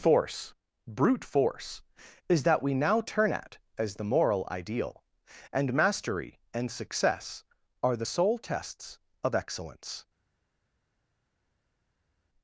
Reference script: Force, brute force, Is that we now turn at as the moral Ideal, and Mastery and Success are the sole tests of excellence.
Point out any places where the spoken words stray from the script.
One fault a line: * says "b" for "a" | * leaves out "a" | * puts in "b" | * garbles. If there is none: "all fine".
all fine